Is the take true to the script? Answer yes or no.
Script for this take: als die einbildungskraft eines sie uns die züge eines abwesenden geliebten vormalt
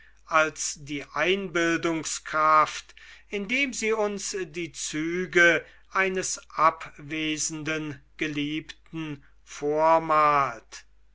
no